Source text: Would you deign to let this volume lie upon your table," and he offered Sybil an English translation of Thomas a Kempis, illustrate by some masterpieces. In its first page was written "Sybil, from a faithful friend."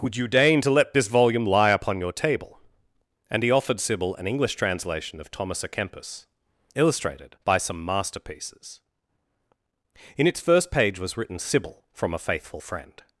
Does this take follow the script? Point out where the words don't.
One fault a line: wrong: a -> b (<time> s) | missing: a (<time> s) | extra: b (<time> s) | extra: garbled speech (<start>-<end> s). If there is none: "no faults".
wrong: illustrate -> illustrated (6.7 s)